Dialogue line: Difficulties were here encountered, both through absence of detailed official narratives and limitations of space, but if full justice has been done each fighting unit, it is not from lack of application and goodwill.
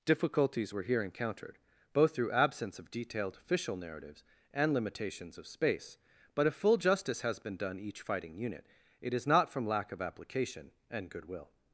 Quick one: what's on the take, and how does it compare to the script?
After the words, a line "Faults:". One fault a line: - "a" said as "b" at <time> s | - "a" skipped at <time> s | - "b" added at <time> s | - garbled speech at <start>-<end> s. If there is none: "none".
Difficulties were here encountered, both through absence of detailed official narratives and limitations of space, but if full justice has been done each fighting unit, it is not from lack of application and goodwill.
Faults:
none